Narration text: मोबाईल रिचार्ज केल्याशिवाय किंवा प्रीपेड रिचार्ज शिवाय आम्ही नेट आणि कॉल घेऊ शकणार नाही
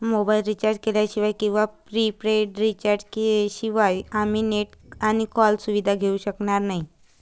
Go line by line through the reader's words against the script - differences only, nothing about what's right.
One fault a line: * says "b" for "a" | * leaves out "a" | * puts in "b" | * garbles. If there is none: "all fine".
* puts in "सुविधा"